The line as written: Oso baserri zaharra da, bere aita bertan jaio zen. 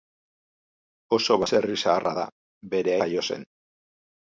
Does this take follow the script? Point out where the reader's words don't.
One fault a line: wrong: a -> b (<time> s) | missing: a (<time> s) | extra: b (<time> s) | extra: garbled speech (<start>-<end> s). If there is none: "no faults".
missing: aita bertan (3.0 s)